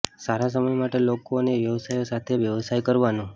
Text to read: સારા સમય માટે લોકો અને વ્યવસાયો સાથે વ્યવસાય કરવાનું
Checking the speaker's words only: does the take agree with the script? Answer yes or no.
yes